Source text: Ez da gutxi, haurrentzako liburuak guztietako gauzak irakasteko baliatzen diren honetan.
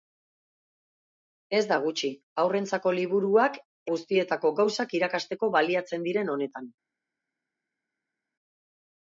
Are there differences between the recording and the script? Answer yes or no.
no